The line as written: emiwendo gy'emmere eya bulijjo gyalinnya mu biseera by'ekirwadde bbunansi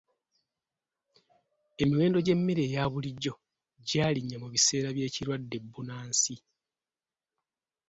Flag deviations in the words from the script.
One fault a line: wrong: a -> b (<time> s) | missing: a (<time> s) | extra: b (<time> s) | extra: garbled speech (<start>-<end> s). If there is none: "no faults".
no faults